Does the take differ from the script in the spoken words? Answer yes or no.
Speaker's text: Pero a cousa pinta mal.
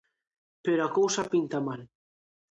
no